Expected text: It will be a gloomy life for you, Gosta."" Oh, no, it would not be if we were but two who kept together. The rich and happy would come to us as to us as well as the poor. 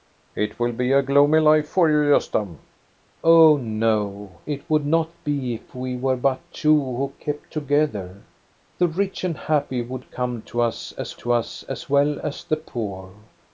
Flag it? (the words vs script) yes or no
no